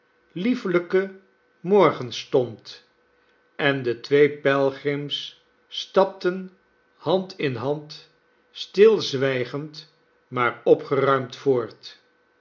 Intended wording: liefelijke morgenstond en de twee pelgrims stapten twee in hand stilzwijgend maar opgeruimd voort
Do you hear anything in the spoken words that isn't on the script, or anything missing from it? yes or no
yes